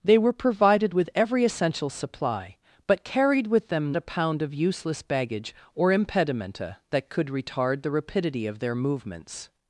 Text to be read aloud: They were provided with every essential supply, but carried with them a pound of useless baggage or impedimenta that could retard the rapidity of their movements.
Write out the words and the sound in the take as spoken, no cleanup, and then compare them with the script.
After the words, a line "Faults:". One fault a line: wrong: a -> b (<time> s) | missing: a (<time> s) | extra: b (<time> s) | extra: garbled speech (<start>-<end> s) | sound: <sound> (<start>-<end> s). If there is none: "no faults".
They were provided with every essential supply, but carried with them a pound of useless baggage or impedimenta that could retard the rapidity of their movements.
Faults:
no faults